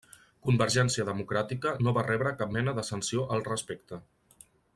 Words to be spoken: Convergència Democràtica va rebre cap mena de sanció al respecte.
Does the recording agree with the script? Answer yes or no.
no